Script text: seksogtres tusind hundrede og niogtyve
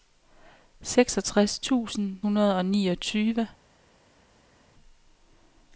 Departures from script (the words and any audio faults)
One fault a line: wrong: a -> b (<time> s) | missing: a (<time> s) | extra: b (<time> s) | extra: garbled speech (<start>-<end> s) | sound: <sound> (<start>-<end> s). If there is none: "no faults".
no faults